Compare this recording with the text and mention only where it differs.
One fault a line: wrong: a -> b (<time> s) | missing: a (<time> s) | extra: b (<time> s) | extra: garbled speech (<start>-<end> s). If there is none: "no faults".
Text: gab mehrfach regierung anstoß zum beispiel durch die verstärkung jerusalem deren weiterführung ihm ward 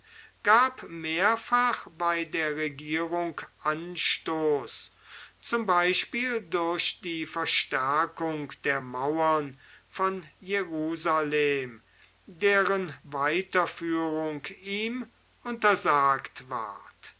extra: bei der (2.0 s)
extra: der mauern von (8.6 s)
extra: untersagt (15.4 s)